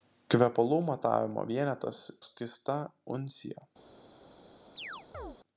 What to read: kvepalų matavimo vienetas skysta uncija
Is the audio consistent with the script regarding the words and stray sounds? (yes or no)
no